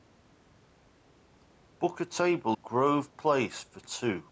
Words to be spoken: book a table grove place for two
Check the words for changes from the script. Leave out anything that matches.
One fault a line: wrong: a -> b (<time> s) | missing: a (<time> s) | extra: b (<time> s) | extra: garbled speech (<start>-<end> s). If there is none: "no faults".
no faults